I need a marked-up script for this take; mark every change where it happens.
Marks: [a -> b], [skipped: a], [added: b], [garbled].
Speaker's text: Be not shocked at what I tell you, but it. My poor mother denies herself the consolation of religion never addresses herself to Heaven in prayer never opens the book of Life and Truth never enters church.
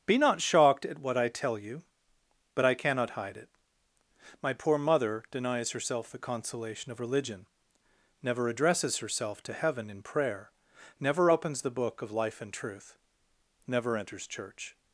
Be not shocked at what I tell you, but [added: I cannot hide] it. My poor mother denies herself the consolation of religion never addresses herself to Heaven in prayer never opens the book of Life and Truth never enters church.